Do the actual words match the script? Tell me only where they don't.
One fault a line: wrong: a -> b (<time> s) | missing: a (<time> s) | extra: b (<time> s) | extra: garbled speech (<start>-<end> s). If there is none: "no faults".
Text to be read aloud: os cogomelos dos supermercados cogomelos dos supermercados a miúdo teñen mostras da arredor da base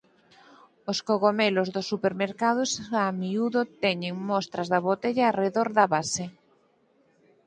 missing: cogomelos dos supermercados (2.7 s)
extra: botella (4.9 s)